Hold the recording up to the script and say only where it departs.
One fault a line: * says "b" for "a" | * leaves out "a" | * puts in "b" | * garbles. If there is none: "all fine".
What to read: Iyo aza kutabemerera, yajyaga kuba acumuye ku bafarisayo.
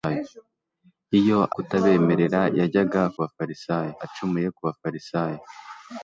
* leaves out "aza"
* says "bafarisayo" for "kuba"